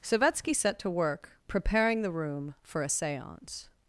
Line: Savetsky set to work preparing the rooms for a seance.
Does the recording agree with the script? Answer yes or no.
no